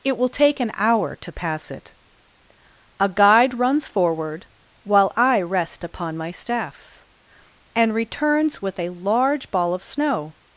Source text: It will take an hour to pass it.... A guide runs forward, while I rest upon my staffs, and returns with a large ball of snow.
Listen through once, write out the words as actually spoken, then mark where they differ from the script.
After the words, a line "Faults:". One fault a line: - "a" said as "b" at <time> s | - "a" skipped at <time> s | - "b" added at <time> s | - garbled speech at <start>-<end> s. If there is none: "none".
It will take an hour to pass it.... A guide runs forward, while I rest upon my staffs, and returns with a large ball of snow.
Faults:
none